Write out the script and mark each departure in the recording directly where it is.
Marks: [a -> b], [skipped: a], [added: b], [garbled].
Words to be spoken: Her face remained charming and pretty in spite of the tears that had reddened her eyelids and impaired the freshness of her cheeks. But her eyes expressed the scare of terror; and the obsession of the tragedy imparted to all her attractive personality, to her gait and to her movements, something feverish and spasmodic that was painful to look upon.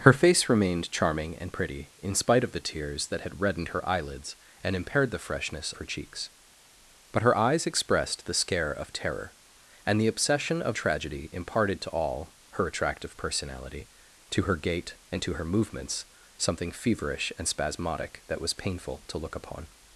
Her face remained charming and pretty in spite of the tears that had reddened her eyelids and impaired the freshness [skipped: of] her cheeks. But her eyes expressed the scare of terror; and the obsession of [skipped: the] tragedy imparted to all her attractive personality, to her gait and to her movements, something feverish and spasmodic that was painful to look upon.